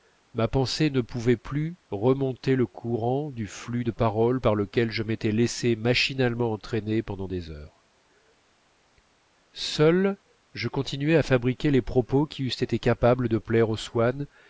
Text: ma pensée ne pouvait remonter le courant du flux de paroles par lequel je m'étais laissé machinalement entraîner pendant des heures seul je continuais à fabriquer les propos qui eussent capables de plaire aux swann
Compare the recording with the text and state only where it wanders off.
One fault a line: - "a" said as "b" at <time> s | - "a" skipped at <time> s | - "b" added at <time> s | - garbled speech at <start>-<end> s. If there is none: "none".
- "plus" added at 1.4 s
- "été" added at 12.6 s